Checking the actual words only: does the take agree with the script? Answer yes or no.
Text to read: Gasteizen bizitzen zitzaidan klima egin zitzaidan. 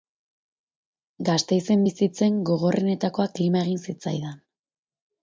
no